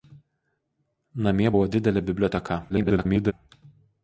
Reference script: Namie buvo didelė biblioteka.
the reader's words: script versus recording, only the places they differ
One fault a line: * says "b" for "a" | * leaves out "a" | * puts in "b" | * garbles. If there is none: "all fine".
* garbles